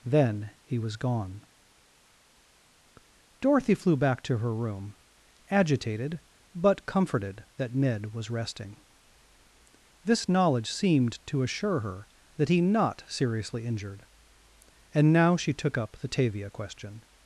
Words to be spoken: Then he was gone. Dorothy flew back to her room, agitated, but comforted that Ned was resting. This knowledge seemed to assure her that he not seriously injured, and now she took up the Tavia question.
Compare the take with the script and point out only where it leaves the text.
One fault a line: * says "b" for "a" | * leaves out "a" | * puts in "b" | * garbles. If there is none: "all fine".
all fine